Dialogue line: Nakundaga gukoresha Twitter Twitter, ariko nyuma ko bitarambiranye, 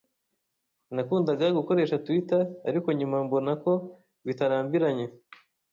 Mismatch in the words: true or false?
true